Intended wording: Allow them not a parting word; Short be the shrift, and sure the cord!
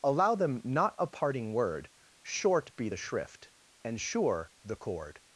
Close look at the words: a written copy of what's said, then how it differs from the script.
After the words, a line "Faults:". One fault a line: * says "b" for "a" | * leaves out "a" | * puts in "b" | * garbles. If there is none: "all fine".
Allow them not a parting word; Short be the shrift, and sure the cord!
Faults:
all fine